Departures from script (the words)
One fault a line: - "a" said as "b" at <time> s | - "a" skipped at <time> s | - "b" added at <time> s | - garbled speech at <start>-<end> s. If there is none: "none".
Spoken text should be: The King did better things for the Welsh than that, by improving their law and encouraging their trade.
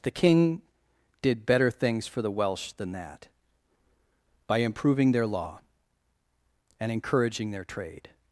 none